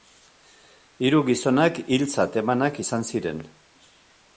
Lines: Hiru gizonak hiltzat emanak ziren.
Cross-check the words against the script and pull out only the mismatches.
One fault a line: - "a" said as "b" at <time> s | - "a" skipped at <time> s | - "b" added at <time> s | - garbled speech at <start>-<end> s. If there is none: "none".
- "izan" added at 2.9 s